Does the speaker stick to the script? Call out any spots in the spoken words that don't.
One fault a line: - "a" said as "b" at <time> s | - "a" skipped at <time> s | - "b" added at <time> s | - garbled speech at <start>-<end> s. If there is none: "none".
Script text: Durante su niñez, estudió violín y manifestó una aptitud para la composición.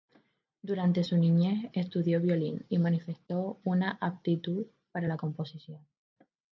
none